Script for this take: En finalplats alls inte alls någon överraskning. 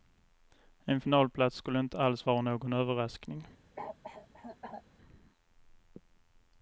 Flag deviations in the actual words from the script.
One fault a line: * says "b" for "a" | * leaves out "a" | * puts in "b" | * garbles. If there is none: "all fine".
* says "skulle" for "alls"
* puts in "vara"